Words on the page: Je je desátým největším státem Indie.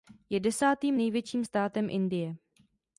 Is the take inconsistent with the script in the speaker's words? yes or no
yes